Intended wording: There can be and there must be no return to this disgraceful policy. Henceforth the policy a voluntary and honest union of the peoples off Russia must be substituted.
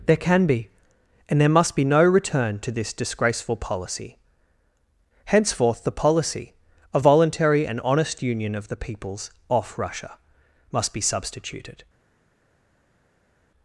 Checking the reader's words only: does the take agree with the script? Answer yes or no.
yes